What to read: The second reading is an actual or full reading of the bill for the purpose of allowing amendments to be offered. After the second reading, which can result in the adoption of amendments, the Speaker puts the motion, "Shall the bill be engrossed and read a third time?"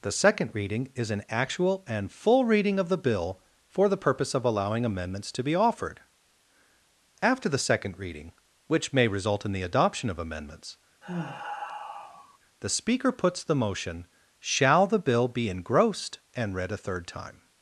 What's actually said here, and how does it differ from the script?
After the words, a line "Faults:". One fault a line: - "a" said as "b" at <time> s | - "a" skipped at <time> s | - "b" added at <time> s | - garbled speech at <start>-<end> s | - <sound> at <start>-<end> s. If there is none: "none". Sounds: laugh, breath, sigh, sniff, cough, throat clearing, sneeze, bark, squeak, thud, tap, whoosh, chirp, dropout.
The second reading is an actual and full reading of the bill for the purpose of allowing amendments to be offered. After the second reading, which may result in the adoption of amendments, the Speaker puts the motion, "Shall the bill be engrossed and read a third time?"
Faults:
- "or" said as "and" at 1.9 s
- "can" said as "may" at 8.9 s
- sigh at 11.0-12.4 s